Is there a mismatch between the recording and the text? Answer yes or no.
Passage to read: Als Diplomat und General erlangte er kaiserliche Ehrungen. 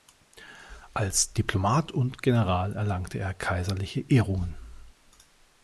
no